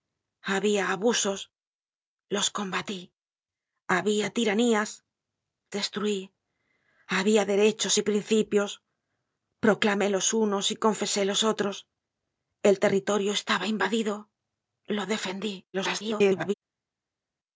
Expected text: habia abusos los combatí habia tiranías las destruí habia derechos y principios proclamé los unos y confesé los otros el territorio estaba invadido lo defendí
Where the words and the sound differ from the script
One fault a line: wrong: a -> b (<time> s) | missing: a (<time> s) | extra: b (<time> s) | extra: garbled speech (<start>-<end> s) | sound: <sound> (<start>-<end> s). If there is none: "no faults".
missing: las (4.9 s)
extra: garbled speech (15.7-16.5 s)